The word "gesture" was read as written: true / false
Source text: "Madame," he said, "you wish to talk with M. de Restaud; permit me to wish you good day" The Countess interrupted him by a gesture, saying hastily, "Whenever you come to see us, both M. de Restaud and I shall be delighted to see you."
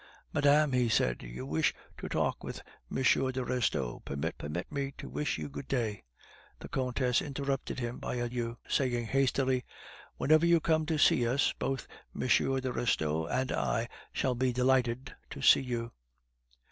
false